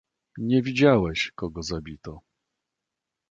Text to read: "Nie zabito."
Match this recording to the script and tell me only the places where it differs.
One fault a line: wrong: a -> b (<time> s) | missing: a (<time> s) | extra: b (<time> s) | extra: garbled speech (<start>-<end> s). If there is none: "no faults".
extra: widziałeś kogo (0.6 s)